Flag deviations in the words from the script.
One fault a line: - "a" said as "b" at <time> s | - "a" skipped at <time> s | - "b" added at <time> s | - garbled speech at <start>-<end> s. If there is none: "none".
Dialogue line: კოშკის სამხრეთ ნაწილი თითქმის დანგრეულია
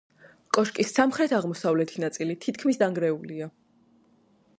- "აღმოსავლეთი" added at 1.4 s